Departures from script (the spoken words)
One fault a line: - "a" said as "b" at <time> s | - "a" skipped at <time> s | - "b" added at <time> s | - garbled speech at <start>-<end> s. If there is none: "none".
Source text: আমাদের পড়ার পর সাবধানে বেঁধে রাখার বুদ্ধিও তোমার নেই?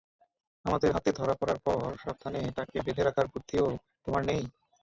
- "হাতে ধরা" added at 0.9 s
- "তাকে" added at 2.6 s